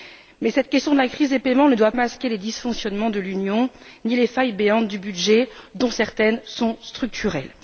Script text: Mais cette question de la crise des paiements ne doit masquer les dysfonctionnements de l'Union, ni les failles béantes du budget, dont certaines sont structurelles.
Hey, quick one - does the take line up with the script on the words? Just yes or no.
yes